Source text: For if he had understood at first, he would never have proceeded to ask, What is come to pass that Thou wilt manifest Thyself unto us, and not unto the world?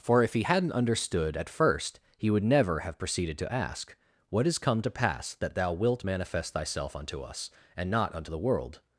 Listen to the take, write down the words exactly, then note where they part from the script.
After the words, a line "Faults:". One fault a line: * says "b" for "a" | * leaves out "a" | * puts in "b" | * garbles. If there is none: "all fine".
For if he hadn't understood at first, he would never have proceeded to ask, What is come to pass that Thou wilt manifest Thyself unto us, and not unto the world?
Faults:
* says "hadn't" for "had"